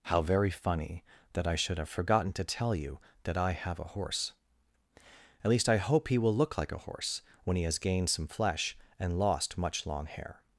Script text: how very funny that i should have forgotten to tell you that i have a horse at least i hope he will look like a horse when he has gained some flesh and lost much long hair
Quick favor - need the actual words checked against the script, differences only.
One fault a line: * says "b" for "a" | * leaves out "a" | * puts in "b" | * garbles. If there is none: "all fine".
all fine